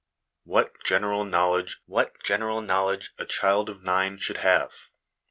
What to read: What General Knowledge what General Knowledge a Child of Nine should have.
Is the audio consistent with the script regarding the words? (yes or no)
yes